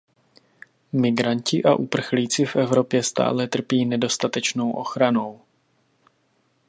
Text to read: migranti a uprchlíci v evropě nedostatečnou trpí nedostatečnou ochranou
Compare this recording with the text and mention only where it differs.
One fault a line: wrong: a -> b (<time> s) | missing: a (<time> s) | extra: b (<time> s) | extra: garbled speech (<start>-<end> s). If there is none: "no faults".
wrong: nedostatečnou -> stále (3.0 s)